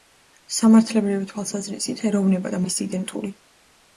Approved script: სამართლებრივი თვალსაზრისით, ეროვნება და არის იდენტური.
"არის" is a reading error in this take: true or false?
false